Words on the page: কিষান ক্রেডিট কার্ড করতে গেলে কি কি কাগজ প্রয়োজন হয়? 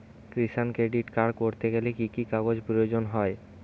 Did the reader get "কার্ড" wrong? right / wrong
right